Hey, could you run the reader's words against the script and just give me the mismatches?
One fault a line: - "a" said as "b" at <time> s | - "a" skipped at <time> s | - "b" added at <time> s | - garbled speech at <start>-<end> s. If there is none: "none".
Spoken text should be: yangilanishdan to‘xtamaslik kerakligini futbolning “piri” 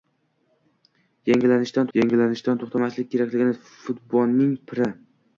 - "yangilanishdan" added at 2.0 s